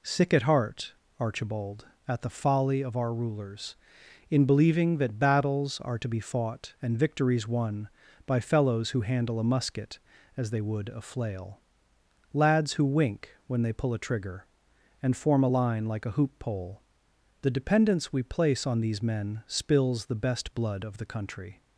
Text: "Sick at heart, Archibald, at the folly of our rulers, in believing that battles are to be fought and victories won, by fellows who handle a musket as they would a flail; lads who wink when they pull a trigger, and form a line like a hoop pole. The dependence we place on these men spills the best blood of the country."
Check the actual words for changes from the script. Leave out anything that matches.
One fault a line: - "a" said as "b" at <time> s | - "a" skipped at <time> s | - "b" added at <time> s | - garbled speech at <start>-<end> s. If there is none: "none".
none